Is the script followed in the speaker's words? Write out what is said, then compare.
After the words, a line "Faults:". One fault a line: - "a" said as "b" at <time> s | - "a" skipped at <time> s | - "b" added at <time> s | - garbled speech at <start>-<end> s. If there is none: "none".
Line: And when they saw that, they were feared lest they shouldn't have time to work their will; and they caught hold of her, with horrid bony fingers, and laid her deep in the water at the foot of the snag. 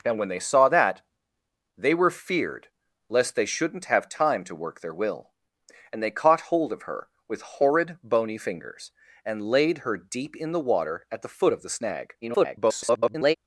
And when they saw that, they were feared lest they shouldn't have time to work their will; and they caught hold of her, with horrid bony fingers, and laid her deep in the water at the foot of the snag. [garbled]
Faults:
- garbled speech at 12.2-13.3 s